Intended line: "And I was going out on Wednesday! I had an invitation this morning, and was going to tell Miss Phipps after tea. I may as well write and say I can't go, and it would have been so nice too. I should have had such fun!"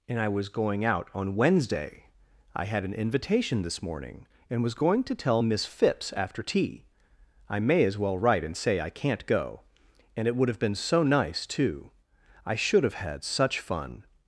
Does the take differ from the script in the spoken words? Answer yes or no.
no